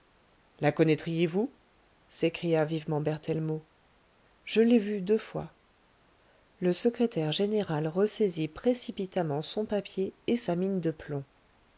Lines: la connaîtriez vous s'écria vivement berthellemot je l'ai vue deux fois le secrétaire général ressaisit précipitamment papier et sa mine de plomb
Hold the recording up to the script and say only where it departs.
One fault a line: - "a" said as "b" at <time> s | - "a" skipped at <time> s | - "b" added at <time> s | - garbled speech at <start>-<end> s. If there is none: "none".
- "son" added at 9.4 s